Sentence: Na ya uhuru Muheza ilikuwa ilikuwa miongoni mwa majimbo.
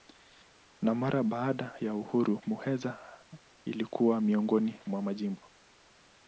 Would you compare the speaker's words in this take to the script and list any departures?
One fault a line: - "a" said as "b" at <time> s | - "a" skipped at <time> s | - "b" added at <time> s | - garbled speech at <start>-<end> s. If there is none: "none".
- "mara baada" added at 0.9 s
- "ilikuwa" skipped at 4.2 s